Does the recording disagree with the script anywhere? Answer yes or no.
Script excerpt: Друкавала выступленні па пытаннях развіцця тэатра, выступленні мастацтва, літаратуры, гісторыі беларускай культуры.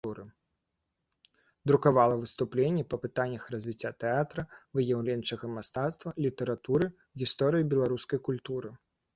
yes